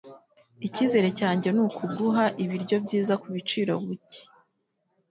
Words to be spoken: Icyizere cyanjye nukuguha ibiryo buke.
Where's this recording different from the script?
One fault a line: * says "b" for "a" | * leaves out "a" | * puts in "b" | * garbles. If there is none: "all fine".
* puts in "byiza kubiciro"